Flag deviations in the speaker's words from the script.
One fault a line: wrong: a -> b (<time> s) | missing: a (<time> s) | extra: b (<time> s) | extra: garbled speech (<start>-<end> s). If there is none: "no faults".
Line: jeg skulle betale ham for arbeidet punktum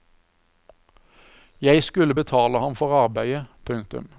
no faults